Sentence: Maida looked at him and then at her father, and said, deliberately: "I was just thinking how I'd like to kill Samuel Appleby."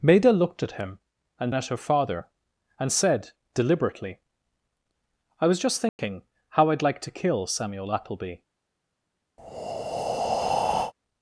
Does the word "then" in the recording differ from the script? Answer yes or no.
yes